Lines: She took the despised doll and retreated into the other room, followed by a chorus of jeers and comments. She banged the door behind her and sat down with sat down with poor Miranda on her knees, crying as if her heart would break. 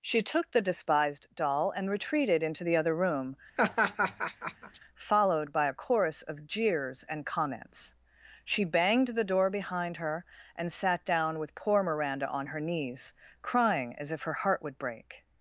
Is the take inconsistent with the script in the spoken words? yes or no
yes